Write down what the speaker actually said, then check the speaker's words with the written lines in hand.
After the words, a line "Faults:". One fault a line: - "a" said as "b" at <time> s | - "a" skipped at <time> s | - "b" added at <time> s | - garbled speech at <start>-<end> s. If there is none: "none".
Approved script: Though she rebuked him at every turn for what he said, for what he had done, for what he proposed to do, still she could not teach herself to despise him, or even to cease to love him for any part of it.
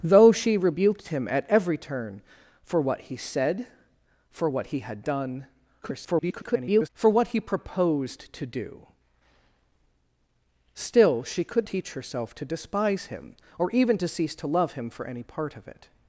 Though she rebuked him at every turn for what he said, for what he had done, [garbled] for what he proposed to do, still she could teach herself to despise him, or even to cease to love him for any part of it.
Faults:
- garbled speech at 5.8-6.9 s
- "not" skipped at 11.7 s